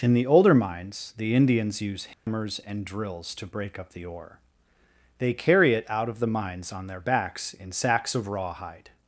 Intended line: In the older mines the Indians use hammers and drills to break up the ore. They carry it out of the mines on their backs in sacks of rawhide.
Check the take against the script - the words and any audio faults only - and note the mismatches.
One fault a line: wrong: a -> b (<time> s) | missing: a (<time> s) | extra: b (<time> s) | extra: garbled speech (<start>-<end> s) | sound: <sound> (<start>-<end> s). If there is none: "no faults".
sound: dropout (2.1-2.3 s)